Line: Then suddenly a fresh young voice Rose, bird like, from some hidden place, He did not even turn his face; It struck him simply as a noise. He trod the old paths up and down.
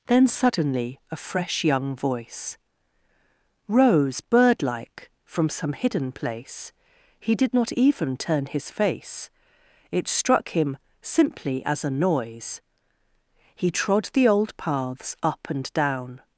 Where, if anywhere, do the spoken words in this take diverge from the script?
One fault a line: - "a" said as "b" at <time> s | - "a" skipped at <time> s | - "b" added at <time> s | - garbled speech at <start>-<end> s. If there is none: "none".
none